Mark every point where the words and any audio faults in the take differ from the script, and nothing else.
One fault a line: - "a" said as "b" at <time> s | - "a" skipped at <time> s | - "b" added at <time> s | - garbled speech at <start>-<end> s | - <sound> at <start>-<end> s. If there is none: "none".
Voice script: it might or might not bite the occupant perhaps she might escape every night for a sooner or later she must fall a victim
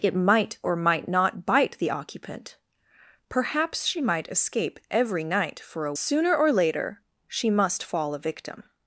none